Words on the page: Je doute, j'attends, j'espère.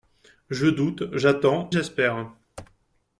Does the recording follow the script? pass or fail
pass